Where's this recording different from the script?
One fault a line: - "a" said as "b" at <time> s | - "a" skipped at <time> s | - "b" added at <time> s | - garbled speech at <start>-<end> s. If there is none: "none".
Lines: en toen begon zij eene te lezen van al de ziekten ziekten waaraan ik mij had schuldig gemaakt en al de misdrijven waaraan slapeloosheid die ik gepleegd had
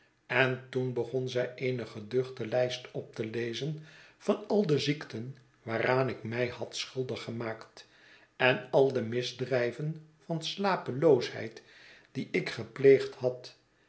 - "geduchte lijst op" added at 1.9 s
- "ziekten" skipped at 5.4 s
- "waaraan" said as "van" at 10.2 s